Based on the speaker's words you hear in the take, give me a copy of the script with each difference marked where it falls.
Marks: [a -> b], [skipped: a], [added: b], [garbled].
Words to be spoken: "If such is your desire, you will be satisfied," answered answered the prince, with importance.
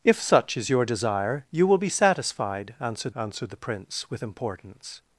"If such is your desire, you will be satisfied," answered answered the prince, with importance.